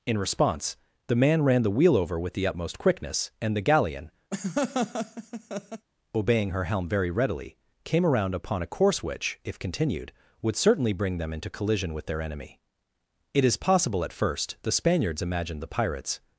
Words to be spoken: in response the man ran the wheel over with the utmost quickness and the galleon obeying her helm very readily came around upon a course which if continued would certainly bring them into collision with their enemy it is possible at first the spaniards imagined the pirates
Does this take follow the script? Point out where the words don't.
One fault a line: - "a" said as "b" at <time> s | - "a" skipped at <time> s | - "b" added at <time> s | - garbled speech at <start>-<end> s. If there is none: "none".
none